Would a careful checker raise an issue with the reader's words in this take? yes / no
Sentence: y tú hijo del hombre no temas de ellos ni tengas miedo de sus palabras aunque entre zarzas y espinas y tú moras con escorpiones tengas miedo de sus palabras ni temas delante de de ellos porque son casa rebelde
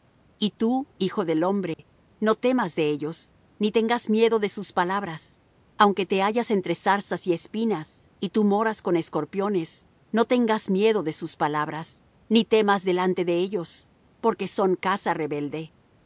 yes